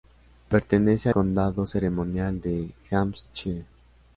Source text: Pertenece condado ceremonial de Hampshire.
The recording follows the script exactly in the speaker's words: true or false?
true